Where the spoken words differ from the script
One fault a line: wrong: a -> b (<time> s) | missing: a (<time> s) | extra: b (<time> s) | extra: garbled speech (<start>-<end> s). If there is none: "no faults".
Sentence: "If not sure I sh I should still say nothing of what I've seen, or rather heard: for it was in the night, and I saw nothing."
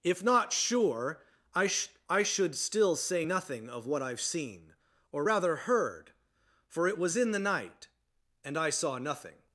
no faults